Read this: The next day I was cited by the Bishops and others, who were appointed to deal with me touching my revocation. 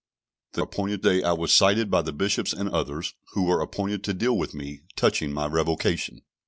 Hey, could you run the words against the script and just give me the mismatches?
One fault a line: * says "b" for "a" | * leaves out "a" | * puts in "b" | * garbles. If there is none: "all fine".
* says "appointed" for "next"